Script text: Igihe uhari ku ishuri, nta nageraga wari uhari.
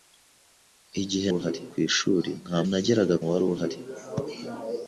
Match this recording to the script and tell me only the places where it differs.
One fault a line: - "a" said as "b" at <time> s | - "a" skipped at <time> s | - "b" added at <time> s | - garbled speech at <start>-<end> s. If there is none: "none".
none